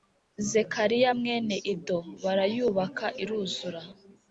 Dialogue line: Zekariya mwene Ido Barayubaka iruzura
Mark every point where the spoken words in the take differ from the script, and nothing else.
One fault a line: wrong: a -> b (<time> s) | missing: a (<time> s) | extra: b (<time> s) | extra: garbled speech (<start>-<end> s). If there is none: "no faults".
no faults